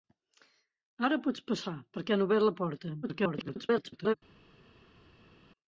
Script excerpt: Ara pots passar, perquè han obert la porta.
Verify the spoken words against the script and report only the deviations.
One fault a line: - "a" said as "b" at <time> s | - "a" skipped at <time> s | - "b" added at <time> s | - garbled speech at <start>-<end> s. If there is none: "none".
- garbled speech at 3.0-4.1 s